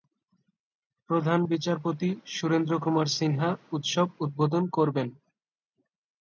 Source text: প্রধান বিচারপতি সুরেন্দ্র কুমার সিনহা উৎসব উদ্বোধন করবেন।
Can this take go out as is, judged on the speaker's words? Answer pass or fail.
pass